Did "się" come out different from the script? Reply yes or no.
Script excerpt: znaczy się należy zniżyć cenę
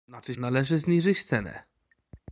yes